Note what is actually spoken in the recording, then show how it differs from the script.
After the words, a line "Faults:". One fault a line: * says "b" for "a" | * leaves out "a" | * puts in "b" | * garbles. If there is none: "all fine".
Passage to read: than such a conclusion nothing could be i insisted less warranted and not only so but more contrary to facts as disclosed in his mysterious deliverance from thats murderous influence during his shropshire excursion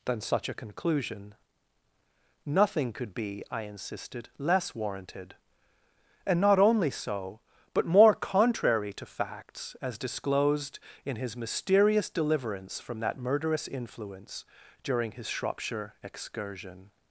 than such a conclusion nothing could be i insisted less warranted and not only so but more contrary to facts as disclosed in his mysterious deliverance from that murderous influence during his shropshire excursion
Faults:
* says "that" for "thats"